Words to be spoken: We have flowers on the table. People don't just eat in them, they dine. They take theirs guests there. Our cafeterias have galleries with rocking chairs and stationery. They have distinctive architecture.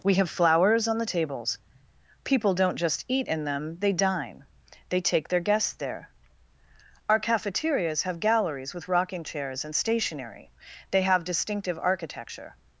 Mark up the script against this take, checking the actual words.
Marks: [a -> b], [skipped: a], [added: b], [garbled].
We have flowers on the [table. -> tables] People don't just eat in them, they dine. They take [theirs -> their] guests there. Our cafeterias have galleries with rocking chairs and stationery. They have distinctive architecture.